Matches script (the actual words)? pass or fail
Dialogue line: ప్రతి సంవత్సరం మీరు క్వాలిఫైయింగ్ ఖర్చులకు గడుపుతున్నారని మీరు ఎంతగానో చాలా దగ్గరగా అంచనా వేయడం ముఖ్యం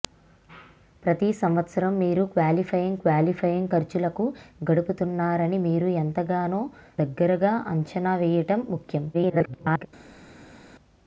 fail